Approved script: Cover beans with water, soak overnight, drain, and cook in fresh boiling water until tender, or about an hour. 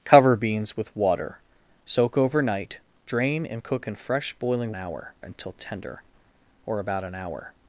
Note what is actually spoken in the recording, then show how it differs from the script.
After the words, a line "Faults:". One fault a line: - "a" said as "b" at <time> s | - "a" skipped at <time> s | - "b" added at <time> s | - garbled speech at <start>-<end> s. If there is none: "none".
Cover beans with water, soak overnight, drain, and cook in fresh boiling hour until tender, or about an hour.
Faults:
- "water" said as "hour" at 4.7 s